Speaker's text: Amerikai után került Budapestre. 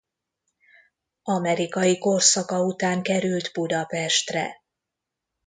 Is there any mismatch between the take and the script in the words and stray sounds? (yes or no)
yes